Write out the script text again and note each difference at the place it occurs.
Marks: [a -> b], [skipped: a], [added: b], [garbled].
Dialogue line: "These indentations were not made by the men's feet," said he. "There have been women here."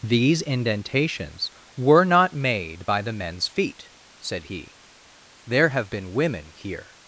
"These indentations were not made by the men's feet," said he. "There have been women here."